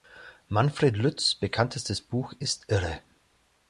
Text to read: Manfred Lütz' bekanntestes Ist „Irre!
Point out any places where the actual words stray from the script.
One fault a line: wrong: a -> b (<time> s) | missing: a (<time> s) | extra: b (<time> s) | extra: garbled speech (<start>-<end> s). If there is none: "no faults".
extra: Buch (2.0 s)